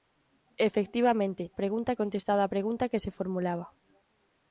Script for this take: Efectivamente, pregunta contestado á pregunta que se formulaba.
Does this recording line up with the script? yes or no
yes